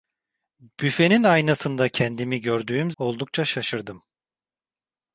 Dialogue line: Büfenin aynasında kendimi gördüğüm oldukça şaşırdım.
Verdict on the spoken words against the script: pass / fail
pass